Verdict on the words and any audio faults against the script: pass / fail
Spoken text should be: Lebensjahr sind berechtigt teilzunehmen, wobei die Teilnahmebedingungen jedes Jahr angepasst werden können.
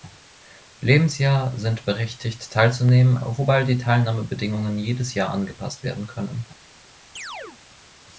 fail